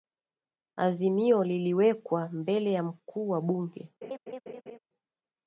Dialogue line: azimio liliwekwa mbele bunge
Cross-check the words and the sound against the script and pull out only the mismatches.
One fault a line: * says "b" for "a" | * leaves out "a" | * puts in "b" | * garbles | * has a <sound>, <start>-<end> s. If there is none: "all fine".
* puts in "ya mkuu wa"
* has a laugh, 4.0-4.8 s